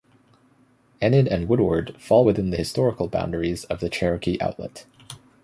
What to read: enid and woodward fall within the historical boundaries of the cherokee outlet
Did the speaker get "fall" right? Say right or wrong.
right